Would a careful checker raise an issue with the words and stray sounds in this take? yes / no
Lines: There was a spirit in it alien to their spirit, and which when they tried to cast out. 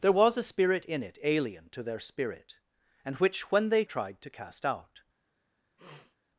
yes